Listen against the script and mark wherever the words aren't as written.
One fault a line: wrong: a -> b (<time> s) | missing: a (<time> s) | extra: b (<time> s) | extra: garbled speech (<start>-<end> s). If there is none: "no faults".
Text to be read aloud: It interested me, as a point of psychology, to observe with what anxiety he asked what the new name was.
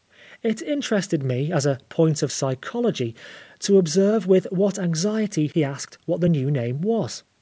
no faults